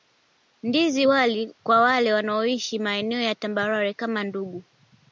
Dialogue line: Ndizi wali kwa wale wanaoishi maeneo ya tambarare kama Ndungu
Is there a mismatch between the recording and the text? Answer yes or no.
no